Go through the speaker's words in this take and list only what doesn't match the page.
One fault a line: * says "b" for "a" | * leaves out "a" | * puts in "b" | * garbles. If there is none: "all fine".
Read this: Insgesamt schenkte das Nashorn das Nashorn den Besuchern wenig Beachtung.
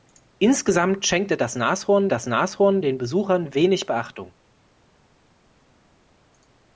all fine